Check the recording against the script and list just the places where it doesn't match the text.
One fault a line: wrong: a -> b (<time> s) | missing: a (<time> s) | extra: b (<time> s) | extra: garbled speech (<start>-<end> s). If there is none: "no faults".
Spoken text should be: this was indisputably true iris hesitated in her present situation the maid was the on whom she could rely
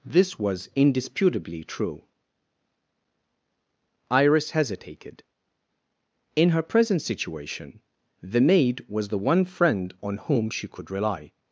extra: one friend (9.2 s)